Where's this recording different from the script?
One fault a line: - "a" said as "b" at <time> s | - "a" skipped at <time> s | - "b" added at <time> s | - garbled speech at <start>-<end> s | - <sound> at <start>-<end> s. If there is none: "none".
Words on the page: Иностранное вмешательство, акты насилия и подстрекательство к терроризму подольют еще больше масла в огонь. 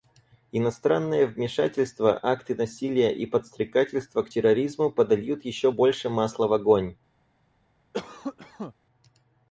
- cough at 7.9-8.7 s